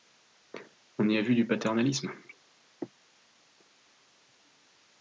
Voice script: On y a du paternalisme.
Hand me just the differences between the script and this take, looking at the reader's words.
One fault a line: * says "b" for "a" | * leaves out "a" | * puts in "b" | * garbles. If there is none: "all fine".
* puts in "vu"